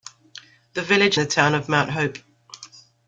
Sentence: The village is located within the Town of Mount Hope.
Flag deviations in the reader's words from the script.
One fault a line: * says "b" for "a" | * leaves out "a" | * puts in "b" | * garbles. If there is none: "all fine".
* leaves out "is located within"